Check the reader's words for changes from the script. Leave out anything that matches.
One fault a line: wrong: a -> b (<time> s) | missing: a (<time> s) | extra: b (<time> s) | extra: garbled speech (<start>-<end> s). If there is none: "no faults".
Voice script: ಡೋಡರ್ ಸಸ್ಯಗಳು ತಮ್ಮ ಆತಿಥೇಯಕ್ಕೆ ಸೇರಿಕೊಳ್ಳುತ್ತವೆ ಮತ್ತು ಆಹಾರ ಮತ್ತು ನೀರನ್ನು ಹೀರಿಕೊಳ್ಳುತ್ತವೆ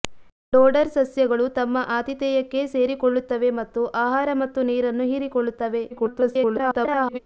extra: garbled speech (5.9-7.2 s)